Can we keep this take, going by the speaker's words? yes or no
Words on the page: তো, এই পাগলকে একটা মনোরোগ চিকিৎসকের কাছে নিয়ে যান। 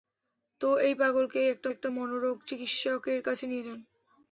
no